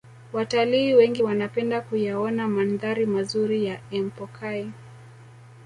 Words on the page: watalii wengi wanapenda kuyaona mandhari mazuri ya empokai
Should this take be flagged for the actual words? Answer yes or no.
no